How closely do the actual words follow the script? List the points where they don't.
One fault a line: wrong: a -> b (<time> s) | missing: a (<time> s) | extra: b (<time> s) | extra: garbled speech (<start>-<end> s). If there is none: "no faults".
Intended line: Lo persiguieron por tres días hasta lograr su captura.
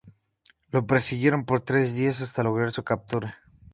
no faults